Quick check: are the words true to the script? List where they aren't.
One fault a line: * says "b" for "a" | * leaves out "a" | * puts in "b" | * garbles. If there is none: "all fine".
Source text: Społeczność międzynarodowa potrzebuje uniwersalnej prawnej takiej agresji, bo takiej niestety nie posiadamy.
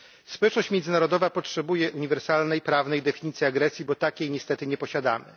* says "definicji" for "takiej"